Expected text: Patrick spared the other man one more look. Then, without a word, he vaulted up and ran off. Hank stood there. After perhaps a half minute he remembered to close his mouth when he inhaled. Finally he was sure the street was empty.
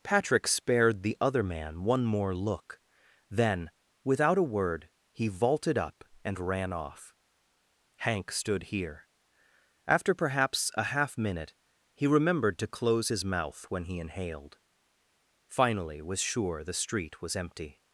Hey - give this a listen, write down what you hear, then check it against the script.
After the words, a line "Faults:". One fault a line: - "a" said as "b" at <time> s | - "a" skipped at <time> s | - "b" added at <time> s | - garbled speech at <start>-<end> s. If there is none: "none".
Patrick spared the other man one more look. Then, without a word, he vaulted up and ran off. Hank stood here. After perhaps a half minute he remembered to close his mouth when he inhaled. Finally was sure the street was empty.
Faults:
- "there" said as "here" at 8.6 s
- "he" skipped at 16.0 s